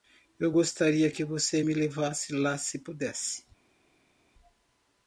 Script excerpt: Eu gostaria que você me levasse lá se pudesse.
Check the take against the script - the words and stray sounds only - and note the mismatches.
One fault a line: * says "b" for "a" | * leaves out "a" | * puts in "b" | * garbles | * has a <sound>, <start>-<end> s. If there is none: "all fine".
all fine